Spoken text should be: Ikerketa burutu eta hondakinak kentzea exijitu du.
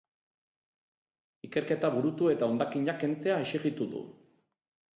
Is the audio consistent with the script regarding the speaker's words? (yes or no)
yes